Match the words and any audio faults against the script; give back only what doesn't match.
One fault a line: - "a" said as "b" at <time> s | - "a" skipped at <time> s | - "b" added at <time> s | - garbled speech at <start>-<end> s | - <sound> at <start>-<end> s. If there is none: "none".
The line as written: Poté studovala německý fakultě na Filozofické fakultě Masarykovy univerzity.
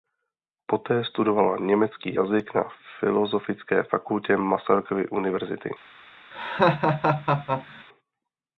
- "fakultě" said as "jazyk" at 2.1 s
- laugh at 6.3-7.8 s